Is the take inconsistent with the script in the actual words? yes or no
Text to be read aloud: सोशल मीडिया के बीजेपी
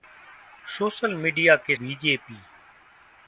no